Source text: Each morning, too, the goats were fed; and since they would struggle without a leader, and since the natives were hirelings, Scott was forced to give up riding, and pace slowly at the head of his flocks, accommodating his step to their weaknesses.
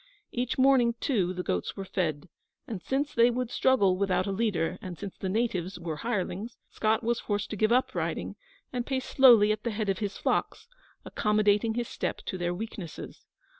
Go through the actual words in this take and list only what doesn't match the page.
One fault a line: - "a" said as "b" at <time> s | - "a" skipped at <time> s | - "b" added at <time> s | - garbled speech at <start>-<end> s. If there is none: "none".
none